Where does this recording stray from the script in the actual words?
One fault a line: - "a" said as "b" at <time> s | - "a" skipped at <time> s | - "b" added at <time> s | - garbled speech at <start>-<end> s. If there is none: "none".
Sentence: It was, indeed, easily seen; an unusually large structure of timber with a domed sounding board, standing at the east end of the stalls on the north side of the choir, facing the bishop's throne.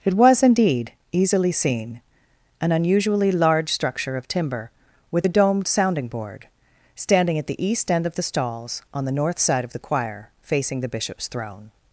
none